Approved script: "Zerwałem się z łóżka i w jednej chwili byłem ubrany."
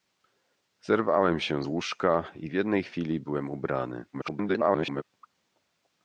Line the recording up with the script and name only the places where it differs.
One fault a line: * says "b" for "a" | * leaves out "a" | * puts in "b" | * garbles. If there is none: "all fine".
* leaves out "z"
* garbles